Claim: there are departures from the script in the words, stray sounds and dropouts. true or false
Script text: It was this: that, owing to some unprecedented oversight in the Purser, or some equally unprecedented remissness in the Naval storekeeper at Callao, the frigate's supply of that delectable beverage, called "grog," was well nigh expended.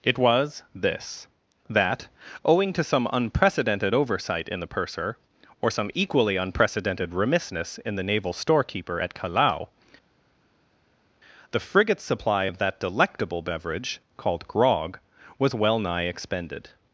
false